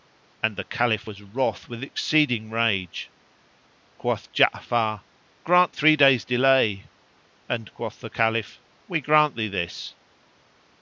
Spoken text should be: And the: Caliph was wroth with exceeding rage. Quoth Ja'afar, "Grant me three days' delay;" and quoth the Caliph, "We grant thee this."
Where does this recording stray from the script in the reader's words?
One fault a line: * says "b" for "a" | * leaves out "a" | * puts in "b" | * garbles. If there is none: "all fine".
* leaves out "me"